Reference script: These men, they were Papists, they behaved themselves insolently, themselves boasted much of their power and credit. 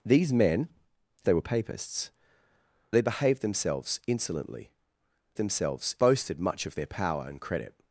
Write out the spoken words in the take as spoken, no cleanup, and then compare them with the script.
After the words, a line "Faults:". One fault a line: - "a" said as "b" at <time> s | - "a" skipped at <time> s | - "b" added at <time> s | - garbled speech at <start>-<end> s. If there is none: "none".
These men, they were Papists, they behaved themselves insolently, themselves boasted much of their power and credit.
Faults:
none